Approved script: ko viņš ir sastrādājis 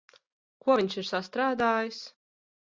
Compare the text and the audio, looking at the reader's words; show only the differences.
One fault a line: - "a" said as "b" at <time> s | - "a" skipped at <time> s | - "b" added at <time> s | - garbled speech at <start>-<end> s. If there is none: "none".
none